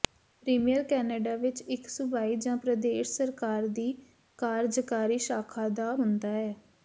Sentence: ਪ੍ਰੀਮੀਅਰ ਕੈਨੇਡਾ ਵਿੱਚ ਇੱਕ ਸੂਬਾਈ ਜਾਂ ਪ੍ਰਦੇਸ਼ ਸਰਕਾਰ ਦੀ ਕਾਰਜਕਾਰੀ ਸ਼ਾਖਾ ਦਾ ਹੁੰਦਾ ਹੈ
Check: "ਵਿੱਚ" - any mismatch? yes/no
no